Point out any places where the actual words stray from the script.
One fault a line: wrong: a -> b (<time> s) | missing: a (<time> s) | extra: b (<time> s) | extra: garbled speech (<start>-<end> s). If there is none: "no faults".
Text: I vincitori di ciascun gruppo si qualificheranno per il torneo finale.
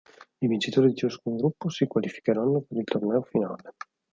no faults